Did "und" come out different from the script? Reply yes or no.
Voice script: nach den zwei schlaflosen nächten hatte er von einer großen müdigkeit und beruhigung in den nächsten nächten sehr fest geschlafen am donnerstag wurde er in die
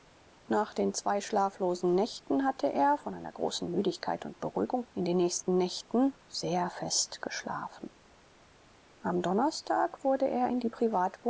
no